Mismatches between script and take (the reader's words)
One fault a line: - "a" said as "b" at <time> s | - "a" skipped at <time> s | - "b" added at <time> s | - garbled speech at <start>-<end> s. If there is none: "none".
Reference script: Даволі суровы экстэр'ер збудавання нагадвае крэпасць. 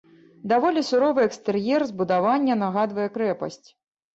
none